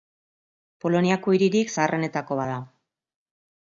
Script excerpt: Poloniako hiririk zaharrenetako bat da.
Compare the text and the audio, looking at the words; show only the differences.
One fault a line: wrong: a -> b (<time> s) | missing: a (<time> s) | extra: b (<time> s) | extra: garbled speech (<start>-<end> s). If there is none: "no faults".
no faults